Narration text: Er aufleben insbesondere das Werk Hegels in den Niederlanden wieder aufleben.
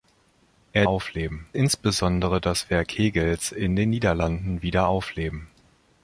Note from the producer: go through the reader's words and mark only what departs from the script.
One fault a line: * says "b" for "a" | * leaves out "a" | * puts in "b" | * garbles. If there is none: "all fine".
all fine